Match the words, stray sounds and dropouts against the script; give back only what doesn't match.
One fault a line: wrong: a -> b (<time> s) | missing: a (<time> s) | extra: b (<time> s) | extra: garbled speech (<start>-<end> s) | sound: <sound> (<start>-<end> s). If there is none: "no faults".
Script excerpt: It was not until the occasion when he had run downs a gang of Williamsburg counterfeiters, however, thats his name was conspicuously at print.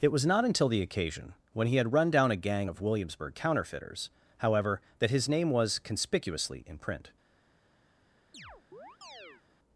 wrong: downs -> down (2.1 s)
wrong: thats -> that (5.0 s)
wrong: at -> in (6.7 s)
sound: chirp (8.3-9.4 s)